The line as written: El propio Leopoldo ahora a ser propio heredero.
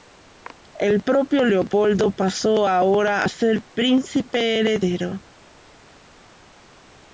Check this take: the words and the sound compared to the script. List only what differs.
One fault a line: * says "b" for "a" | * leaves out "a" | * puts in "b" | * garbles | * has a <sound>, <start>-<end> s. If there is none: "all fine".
* puts in "pasó"
* says "príncipe" for "propio"